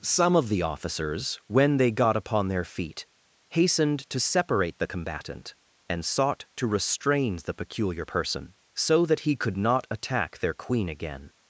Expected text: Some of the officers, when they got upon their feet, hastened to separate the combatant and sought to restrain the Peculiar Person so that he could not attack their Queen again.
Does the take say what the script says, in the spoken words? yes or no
yes